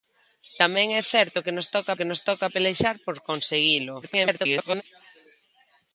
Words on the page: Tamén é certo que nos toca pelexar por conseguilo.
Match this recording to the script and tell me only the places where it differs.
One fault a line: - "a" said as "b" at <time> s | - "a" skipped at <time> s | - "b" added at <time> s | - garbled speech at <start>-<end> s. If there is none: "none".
- "que nos toca" added at 2.0 s
- garbled speech at 4.0-4.8 s